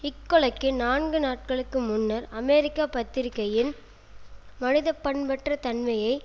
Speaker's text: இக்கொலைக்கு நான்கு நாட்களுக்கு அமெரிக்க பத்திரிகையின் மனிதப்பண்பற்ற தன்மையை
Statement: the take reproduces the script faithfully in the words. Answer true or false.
false